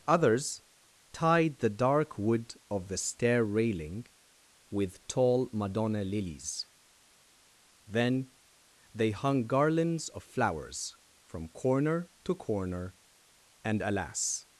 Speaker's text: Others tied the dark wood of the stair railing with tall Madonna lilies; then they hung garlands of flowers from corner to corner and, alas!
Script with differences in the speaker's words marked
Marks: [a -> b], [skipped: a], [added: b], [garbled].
Others tied the dark wood of the stair railing with tall Madonna lilies; then they hung garlands of flowers from corner to corner and, alas!